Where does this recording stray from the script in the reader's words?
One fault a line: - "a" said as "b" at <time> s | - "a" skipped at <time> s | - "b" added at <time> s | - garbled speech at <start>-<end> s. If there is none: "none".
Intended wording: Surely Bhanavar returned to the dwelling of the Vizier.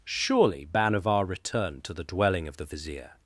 none